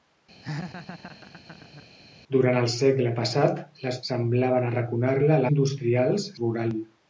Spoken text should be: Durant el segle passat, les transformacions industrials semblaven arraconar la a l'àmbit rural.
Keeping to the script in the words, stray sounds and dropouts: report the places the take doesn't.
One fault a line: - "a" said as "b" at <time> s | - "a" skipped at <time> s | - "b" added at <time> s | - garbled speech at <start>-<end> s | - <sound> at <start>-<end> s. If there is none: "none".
- laugh at 0.4-1.9 s
- "transformacions industrials" skipped at 4.0 s
- "l'àmbit" said as "industrials" at 5.5 s